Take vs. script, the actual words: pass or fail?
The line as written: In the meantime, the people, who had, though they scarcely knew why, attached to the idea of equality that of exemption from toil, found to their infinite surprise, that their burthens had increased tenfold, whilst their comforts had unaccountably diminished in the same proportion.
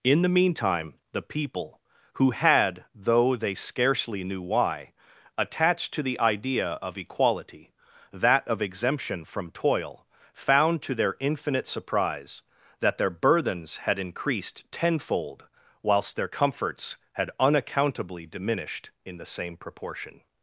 pass